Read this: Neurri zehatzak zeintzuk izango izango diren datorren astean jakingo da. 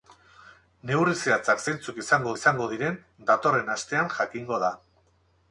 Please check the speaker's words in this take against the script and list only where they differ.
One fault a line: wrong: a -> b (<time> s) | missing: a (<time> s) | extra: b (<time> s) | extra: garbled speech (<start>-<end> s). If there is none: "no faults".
no faults